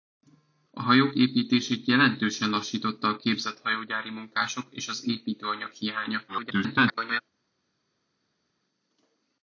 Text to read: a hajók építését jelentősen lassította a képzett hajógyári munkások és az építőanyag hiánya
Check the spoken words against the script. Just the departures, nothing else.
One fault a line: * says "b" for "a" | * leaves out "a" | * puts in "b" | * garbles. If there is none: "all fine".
* garbles